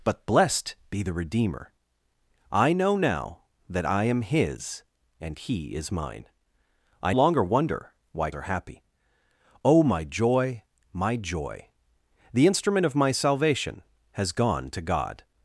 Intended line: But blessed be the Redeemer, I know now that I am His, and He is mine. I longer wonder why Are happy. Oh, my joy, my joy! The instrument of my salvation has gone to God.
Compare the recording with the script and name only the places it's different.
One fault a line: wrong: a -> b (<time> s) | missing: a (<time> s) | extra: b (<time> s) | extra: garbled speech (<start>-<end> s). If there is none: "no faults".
no faults